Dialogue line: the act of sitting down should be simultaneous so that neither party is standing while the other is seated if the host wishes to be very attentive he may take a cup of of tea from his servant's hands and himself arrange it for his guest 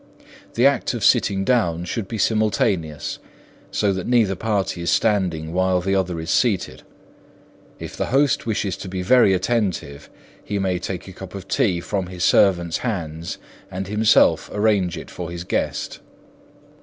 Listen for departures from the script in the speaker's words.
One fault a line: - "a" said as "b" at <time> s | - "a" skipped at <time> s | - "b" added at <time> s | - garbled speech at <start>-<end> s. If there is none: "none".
- "of" skipped at 11.5 s